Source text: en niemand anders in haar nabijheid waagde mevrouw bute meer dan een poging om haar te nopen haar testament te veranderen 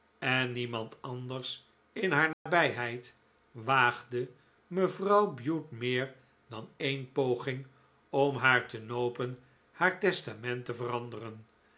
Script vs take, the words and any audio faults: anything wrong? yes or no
yes